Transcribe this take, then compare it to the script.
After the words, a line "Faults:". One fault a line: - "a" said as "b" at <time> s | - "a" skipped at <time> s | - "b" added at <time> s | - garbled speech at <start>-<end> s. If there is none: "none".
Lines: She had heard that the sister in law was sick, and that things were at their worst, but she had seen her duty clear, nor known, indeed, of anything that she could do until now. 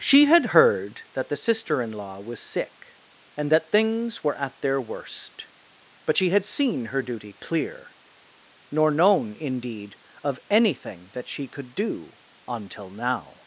She had heard that the sister in law was sick, and that things were at their worst, but she had seen her duty clear, nor known, indeed, of anything that she could do until now.
Faults:
none